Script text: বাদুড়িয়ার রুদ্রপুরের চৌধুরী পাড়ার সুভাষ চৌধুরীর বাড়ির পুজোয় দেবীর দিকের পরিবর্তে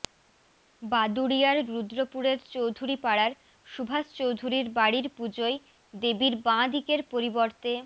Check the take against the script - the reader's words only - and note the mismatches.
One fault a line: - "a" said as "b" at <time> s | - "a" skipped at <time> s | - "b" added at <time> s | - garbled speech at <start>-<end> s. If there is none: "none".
- "বাঁ" added at 6.5 s